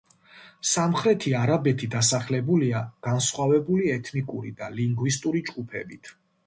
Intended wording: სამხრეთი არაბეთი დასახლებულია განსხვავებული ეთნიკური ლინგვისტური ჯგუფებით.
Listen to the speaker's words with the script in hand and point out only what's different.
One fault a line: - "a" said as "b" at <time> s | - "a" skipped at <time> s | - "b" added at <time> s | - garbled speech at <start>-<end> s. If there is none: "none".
- "და" added at 4.6 s